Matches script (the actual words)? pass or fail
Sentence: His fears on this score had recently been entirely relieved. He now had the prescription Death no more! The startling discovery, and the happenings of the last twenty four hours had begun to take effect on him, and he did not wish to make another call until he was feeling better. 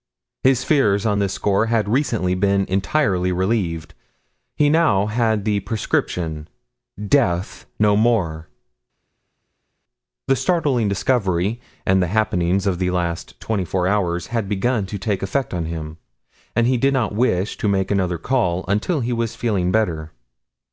pass